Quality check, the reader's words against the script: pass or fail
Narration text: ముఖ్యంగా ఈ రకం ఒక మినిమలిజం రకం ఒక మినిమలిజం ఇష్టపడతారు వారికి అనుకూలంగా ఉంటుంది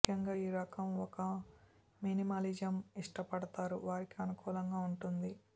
fail